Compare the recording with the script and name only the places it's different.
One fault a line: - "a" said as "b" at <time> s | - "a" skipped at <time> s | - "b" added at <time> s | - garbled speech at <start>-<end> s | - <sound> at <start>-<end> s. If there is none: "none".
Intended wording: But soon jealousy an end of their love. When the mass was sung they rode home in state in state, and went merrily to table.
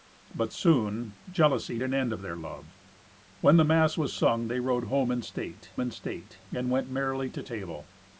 none